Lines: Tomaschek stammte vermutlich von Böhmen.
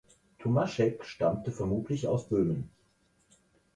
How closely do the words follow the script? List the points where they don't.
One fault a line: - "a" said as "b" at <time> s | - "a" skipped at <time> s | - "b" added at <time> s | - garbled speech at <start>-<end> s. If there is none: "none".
- "von" said as "aus" at 2.1 s